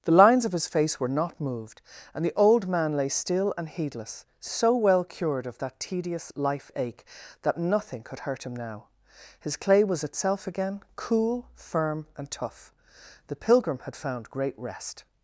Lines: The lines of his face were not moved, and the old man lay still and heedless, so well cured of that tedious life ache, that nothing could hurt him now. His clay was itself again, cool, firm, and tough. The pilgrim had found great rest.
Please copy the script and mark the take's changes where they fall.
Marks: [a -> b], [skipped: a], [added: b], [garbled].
The lines of his face were not moved, and the old man lay still and heedless, so well cured of that tedious life ache, that nothing could hurt him now. His clay was itself again, cool, firm, and tough. The pilgrim had found great rest.